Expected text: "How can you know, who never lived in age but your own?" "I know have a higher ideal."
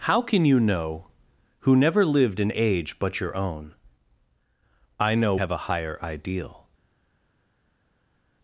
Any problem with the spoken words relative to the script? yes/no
no